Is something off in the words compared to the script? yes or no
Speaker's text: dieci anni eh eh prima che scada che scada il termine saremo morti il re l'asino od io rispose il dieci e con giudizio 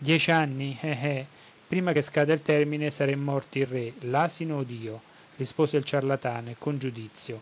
yes